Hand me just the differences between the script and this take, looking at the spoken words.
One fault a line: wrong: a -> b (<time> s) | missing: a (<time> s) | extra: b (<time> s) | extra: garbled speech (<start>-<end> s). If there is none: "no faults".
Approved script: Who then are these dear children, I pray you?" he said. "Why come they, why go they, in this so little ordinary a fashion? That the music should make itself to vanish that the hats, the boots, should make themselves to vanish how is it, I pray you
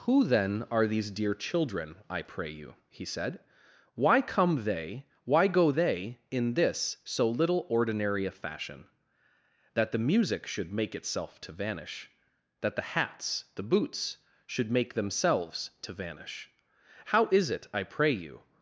no faults